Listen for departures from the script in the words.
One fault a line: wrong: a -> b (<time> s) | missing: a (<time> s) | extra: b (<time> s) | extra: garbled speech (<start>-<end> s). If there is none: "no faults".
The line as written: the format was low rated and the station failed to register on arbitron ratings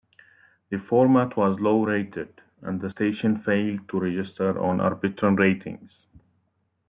no faults